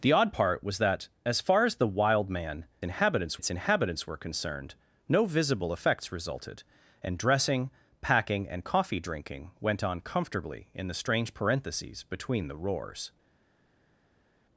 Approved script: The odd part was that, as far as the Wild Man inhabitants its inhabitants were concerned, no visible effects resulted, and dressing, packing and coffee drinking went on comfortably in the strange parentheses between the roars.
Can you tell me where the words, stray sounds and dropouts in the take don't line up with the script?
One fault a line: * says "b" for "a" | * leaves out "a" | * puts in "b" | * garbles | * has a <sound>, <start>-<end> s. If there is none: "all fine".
all fine